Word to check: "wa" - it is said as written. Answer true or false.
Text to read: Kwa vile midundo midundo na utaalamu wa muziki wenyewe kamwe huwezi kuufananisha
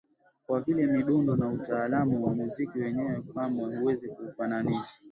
true